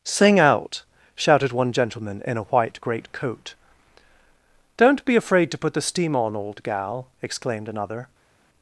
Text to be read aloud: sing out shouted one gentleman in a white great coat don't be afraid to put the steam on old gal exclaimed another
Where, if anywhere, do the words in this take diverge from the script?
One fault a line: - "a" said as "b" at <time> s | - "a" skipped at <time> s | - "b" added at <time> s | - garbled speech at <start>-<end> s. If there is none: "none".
none